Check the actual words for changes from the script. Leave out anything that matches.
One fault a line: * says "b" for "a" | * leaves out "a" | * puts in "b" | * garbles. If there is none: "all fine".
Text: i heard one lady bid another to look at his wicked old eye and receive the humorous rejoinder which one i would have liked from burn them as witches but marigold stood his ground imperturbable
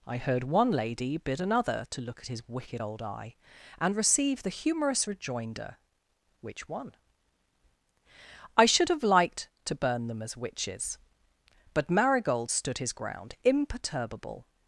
* says "should" for "would"
* says "to" for "from"